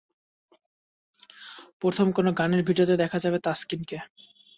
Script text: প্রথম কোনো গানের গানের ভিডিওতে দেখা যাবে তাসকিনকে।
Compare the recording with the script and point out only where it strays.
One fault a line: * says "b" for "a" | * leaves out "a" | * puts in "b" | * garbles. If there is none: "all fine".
* leaves out "গানের"